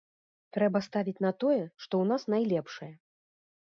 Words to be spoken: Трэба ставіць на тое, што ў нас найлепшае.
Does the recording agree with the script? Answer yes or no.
yes